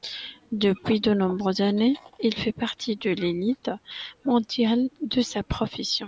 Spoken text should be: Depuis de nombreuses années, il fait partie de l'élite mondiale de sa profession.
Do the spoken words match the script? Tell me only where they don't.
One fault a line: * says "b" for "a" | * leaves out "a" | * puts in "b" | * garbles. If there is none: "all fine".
all fine